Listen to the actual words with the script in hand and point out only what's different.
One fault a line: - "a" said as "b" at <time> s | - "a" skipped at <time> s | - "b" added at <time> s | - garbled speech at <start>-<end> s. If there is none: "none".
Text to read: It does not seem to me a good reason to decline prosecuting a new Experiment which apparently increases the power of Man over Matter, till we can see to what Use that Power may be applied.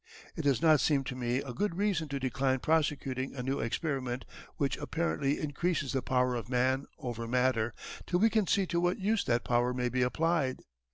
none